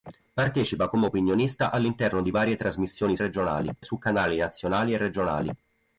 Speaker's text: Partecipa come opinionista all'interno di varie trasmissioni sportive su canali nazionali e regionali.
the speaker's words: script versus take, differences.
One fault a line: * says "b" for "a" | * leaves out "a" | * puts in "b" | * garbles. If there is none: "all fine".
* says "regionali" for "sportive"